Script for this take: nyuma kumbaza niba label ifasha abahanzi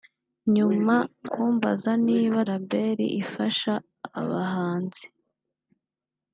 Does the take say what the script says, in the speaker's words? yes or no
yes